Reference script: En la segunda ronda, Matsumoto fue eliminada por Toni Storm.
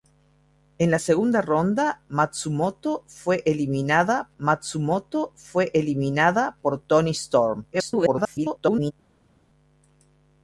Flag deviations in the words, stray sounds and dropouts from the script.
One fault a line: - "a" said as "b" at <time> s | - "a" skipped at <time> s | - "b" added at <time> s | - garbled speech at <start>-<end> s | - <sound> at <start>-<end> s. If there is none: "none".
- "Matsumoto fue eliminada" added at 4.4 s
- garbled speech at 7.7-8.9 s